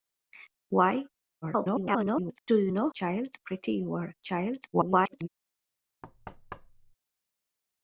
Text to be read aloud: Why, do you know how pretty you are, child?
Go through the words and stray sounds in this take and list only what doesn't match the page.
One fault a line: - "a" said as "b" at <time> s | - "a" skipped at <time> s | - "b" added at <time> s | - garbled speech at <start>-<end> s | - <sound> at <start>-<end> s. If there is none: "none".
- garbled speech at 1.4-2.4 s
- "how" said as "child" at 2.9 s
- garbled speech at 4.7-5.3 s
- thud at 6.0-6.9 s